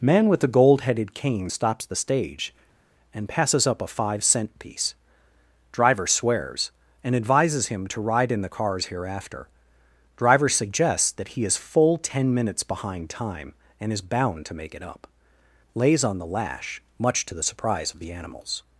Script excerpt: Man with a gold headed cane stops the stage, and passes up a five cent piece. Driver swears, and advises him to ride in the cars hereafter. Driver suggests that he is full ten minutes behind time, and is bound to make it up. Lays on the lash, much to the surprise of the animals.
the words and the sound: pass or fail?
fail